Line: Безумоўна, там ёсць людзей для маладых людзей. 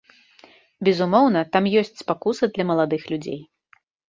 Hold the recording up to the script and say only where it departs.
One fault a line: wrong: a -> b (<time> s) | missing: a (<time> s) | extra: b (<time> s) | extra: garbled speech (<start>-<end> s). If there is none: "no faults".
wrong: людзей -> спакуса (2.0 s)